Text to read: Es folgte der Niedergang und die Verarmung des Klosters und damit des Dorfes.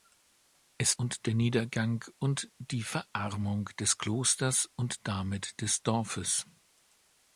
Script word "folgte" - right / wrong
wrong